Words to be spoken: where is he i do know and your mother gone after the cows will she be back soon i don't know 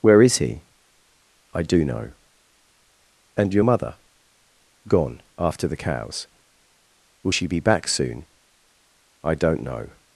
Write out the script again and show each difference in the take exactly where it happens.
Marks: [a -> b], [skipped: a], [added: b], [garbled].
where is he i do know and your mother gone after the cows will she be back soon i don't know